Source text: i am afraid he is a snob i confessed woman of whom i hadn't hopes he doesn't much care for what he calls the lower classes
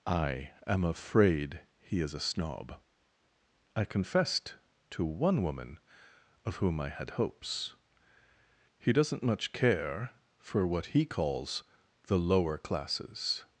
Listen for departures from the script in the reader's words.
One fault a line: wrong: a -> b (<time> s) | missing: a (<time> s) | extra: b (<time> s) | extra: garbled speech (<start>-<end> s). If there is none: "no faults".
extra: to one (4.9 s)
wrong: hadn't -> had (6.9 s)